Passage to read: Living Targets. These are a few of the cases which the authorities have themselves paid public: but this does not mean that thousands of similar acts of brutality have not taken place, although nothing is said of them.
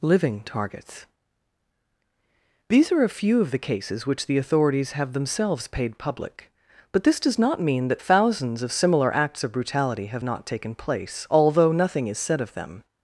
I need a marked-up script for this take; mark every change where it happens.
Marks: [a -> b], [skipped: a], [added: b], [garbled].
Living Targets. These are a few of the cases which the authorities have themselves paid public: but this does not mean that thousands of similar acts of brutality have not taken place, although nothing is said of them.